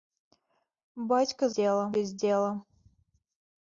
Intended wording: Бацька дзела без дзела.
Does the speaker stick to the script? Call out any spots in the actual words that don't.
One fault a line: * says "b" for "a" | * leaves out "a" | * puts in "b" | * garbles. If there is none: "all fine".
all fine